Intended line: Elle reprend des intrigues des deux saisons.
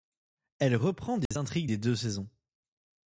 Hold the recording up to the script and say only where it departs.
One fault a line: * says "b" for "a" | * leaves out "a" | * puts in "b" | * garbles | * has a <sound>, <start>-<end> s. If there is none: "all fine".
* has a dropout, 1.3-1.3 s